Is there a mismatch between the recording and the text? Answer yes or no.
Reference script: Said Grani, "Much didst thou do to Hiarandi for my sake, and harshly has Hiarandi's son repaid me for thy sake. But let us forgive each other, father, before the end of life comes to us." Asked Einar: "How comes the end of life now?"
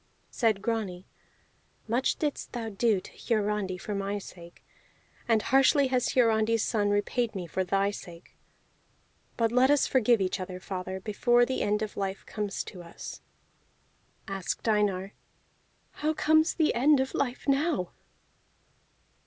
no